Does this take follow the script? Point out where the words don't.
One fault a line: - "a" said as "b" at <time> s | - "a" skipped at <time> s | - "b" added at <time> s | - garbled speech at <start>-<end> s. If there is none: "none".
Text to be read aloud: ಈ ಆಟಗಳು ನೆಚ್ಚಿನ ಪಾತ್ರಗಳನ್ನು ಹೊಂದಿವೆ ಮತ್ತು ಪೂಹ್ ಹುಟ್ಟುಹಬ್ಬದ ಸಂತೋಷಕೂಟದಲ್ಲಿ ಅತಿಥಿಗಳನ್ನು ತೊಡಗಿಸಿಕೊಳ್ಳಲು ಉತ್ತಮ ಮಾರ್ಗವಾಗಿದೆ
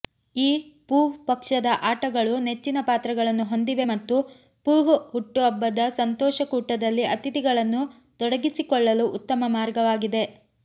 - "ಪೂಹ್ ಪಕ್ಷದ" added at 0.9 s